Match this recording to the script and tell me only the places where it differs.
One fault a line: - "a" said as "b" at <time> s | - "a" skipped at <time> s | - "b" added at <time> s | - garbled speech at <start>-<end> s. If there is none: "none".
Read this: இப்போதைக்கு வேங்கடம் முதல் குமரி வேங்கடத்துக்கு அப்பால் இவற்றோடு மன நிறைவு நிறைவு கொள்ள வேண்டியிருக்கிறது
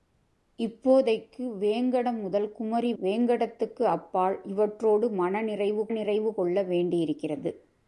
none